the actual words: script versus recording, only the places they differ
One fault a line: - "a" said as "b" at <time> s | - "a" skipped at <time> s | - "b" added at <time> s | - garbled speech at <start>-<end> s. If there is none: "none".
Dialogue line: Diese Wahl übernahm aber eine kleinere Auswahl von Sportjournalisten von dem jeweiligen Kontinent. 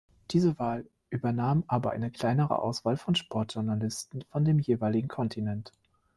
none